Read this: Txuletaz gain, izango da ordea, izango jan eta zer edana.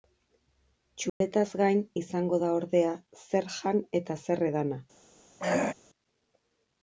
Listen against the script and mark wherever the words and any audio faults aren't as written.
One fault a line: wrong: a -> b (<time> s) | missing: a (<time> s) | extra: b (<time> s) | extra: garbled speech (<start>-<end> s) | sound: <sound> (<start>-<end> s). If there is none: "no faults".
sound: dropout (1.1-1.2 s)
wrong: izango -> zer (3.3 s)
sound: throat clearing (5.4-5.7 s)